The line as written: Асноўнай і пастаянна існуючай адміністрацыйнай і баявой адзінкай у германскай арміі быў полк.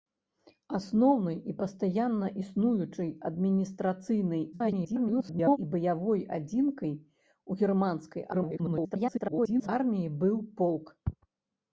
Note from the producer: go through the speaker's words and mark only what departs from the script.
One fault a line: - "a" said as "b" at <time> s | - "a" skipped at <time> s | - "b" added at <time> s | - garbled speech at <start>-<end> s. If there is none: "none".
- garbled speech at 4.5-5.6 s
- garbled speech at 8.3-9.7 s